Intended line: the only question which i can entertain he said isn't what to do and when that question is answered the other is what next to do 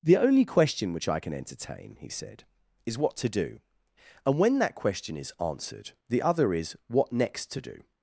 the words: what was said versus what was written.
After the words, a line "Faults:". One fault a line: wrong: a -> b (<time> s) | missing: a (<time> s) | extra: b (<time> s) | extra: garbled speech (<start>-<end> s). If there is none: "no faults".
the only question which i can entertain he said is what to do and when that question is answered the other is what next to do
Faults:
wrong: isn't -> is (2.9 s)